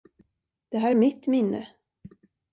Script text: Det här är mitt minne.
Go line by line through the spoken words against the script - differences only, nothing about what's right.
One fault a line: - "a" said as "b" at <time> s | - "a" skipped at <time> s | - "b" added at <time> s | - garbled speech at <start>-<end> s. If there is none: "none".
none